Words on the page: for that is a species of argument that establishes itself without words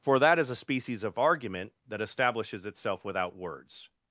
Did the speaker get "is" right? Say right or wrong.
right